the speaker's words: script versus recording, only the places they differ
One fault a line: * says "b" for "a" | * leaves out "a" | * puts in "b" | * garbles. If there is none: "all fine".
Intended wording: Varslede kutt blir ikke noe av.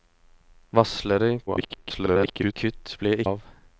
* garbles
* leaves out "ikke noe"